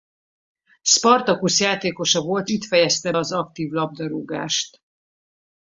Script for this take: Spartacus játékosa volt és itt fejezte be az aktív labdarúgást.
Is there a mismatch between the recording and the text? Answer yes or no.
yes